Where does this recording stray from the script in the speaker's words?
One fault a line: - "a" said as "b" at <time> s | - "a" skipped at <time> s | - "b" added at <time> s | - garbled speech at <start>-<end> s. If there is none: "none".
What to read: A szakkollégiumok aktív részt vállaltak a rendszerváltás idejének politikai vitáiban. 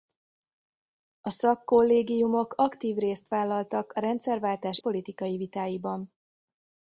- "idejének" skipped at 4.8 s